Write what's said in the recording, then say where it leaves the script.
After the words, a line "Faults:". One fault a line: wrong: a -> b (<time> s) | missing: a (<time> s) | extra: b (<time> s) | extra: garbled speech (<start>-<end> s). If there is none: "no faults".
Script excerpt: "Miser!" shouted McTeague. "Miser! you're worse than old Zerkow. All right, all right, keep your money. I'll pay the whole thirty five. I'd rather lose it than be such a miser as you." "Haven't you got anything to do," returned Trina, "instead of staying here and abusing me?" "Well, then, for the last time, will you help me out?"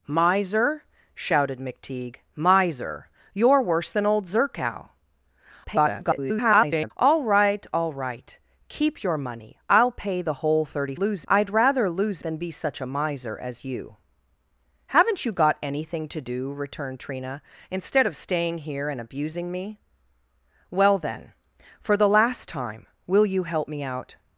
"Miser!" shouted McTeague. "Miser! you're worse than old Zerkow. [garbled] All right, all right, keep your money. I'll pay the whole thirty lose. I'd rather lose than be such a miser as you." "Haven't you got anything to do," returned Trina, "instead of staying here and abusing me?" "Well, then, for the last time, will you help me out?"
Faults:
extra: garbled speech (5.6-6.9 s)
wrong: five -> lose (10.9 s)
missing: it (12.2 s)